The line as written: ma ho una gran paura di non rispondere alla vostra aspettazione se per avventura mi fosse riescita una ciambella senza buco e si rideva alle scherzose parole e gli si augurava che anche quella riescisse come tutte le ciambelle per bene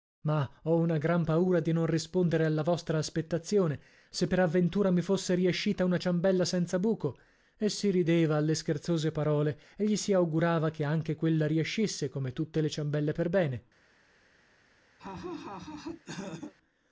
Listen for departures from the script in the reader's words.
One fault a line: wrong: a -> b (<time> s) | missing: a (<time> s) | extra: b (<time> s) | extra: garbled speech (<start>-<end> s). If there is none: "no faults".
no faults